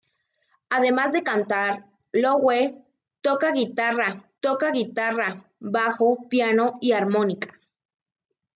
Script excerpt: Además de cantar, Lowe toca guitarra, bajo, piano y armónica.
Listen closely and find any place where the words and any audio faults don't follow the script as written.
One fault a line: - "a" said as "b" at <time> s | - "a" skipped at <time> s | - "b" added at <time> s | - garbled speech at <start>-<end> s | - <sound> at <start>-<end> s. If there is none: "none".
- "toca guitarra" added at 4.4 s